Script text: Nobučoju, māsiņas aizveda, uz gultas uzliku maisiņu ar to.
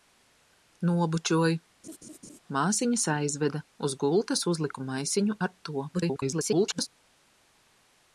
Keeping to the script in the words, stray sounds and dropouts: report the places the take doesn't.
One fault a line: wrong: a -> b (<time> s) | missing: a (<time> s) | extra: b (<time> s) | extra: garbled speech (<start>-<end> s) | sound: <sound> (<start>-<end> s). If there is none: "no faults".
sound: laugh (1.8-2.4 s)
extra: garbled speech (5.9-6.9 s)